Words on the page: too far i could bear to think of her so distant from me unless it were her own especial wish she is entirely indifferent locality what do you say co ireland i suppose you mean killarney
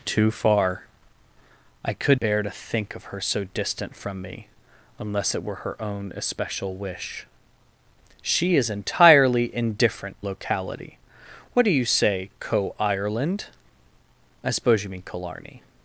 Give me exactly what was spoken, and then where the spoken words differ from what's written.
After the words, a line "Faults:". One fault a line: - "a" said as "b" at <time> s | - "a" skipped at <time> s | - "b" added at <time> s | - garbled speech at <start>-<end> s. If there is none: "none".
too far i could bear to think of her so distant from me unless it were her own especial wish she is entirely indifferent locality what do you say co ireland i suppose you mean killarney
Faults:
none